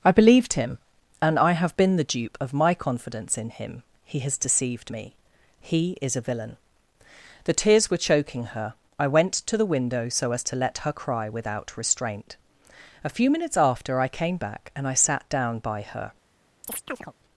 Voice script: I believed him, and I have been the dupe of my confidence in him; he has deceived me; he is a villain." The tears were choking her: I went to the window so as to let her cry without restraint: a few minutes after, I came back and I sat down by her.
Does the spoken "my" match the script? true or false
true